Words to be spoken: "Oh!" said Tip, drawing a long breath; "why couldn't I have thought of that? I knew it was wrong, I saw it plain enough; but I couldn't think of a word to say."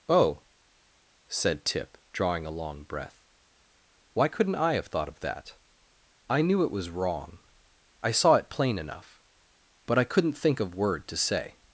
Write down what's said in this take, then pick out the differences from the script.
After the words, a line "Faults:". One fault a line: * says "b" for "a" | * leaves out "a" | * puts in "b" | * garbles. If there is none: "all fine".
"Oh!" said Tip, drawing a long breath; "why couldn't I have thought of that? I knew it was wrong, I saw it plain enough; but I couldn't think of word to say."
Faults:
* leaves out "a"